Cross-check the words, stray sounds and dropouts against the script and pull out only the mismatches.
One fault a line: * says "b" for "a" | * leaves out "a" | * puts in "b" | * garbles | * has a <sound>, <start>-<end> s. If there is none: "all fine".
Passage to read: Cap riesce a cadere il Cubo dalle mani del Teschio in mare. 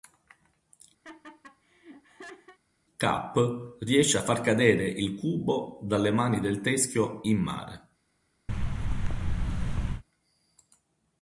* has a laugh, 1.0-2.6 s
* puts in "far"
* has a thud, 8.5-10.0 s